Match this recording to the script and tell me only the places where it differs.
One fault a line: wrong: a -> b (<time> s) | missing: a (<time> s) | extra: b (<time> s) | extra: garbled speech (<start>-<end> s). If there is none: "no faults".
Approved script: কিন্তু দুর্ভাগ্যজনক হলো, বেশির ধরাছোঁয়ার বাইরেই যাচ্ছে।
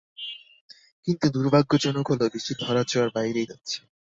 no faults